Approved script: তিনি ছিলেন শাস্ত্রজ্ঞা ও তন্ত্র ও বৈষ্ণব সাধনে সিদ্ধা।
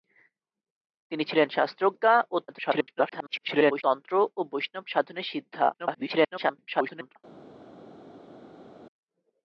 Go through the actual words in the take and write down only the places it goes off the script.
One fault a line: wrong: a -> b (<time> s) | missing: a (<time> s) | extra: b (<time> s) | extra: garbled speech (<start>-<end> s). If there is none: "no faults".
extra: garbled speech (2.5-3.8 s)
extra: garbled speech (5.7-7.2 s)